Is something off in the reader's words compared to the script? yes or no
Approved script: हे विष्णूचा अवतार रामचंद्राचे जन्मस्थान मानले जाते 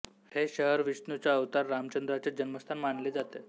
yes